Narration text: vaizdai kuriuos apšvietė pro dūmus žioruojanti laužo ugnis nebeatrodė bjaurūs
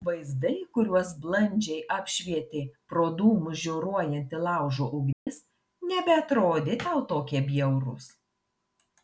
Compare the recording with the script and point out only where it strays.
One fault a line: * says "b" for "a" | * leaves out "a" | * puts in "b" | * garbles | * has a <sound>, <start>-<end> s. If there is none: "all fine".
* puts in "blandžiai"
* has a dropout, 5.1-5.3 s
* puts in "tau tokie"